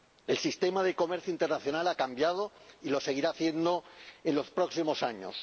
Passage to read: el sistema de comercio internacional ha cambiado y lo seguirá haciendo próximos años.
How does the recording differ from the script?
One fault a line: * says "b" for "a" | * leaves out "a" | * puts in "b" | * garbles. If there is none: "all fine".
* puts in "en los"